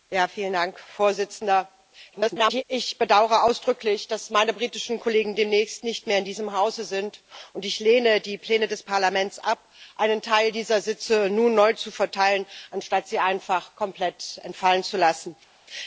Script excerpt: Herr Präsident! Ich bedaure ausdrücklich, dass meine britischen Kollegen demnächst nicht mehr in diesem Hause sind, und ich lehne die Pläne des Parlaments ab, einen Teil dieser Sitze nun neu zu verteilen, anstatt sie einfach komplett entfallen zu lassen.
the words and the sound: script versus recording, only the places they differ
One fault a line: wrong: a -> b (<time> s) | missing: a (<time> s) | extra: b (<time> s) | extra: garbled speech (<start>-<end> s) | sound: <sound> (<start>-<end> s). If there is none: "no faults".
extra: garbled speech (2.1-2.6 s)